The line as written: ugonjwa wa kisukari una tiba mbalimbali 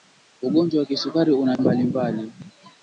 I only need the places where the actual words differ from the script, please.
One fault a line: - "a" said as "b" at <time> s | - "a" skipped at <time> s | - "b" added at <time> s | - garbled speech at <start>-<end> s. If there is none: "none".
- "tiba" skipped at 1.6 s